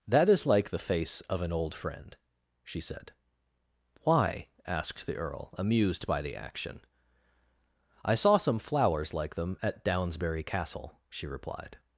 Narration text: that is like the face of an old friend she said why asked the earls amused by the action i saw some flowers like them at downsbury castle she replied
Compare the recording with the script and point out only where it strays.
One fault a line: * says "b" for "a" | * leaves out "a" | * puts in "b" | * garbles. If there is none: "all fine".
* says "earl" for "earls"